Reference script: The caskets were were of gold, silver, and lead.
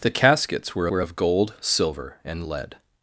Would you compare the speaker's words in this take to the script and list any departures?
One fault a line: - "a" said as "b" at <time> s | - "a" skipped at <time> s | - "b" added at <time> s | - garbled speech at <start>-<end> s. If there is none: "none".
none